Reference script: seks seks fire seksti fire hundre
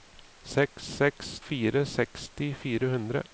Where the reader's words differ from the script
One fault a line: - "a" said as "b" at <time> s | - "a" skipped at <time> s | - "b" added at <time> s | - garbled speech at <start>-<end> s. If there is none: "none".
none